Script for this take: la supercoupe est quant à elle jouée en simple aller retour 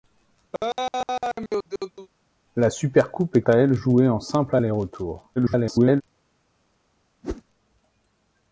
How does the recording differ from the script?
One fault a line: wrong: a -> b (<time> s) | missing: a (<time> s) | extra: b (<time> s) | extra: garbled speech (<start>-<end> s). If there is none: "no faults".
missing: quant (3.4 s)
extra: garbled speech (5.4-6.0 s)